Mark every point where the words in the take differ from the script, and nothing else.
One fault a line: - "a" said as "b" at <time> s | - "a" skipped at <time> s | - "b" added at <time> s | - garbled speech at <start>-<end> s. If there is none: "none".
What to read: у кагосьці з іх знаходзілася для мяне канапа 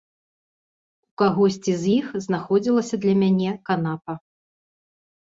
none